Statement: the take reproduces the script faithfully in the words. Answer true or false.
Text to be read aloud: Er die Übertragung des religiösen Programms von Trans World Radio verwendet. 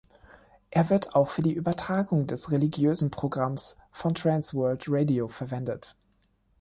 false